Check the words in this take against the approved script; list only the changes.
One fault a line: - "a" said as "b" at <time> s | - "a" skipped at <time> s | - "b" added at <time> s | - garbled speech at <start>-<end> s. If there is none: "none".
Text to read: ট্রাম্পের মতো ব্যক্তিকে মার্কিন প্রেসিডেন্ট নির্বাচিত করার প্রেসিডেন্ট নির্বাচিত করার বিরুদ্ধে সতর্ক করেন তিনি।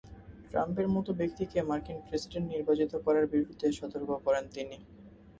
- "প্রেসিডেন্ট নির্বাচিত করার" skipped at 3.2 s